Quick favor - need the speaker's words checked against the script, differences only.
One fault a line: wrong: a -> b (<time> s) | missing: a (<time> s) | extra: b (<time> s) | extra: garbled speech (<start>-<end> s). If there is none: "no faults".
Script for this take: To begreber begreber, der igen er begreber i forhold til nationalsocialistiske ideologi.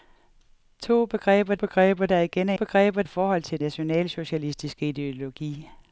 no faults